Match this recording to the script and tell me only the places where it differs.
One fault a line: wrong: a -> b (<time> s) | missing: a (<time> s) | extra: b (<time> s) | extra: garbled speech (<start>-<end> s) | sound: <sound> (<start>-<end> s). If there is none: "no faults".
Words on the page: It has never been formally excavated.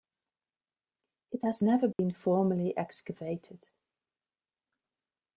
sound: dropout (1.9-2.0 s)